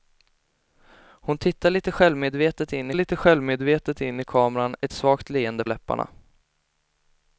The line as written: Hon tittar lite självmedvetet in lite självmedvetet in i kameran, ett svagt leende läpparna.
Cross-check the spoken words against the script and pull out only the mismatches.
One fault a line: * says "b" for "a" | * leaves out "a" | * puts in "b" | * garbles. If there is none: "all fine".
all fine